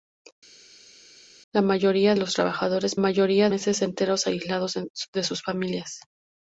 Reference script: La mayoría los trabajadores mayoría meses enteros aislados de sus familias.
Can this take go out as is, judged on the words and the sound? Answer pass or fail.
pass